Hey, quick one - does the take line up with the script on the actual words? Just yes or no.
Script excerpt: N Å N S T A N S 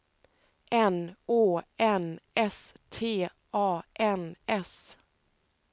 yes